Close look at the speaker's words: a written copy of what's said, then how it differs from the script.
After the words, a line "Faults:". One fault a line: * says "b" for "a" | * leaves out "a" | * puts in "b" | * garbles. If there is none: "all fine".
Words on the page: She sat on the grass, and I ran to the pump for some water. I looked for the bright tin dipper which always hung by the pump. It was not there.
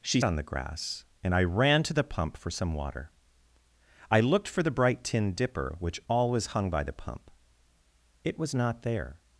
She on the grass, and I ran to the pump for some water. I looked for the bright tin dipper which always hung by the pump. It was not there.
Faults:
* leaves out "sat"